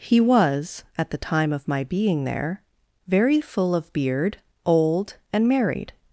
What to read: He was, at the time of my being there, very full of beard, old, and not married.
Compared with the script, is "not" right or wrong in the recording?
wrong